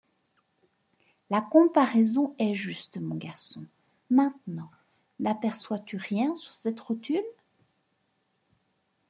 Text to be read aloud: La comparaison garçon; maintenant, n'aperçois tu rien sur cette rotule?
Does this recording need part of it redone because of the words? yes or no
yes